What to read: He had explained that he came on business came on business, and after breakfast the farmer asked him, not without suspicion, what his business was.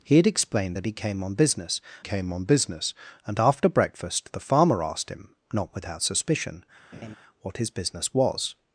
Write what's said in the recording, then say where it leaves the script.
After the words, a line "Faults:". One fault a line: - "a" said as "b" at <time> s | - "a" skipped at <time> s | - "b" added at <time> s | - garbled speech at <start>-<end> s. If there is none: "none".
He had explained that he came on business came on business, and after breakfast the farmer asked him, not without suspicion, what his business was.
Faults:
none